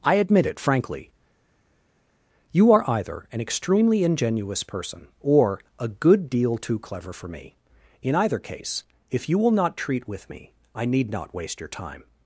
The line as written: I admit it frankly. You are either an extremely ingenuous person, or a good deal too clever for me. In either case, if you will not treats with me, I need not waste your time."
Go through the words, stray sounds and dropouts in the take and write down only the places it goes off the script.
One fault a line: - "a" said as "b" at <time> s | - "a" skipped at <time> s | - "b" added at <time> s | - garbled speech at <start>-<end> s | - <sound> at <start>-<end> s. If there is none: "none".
- "treats" said as "treat" at 9.8 s